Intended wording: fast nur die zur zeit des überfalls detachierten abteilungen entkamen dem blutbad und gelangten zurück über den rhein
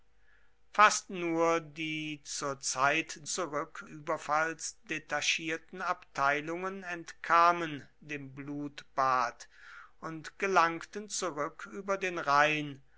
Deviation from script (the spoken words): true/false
true